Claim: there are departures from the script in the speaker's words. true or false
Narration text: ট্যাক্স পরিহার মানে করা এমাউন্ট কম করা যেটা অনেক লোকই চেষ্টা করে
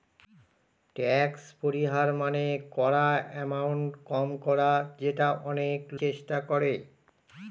true